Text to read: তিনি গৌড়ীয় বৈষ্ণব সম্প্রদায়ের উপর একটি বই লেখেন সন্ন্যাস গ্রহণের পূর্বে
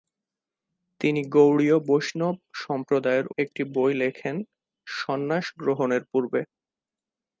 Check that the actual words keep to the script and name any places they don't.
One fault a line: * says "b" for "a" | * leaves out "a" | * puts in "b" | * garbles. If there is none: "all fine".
* leaves out "উপর"